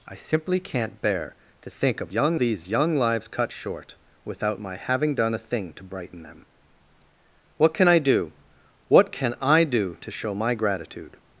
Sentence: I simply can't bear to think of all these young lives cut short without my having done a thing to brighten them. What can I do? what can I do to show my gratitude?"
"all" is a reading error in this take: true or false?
true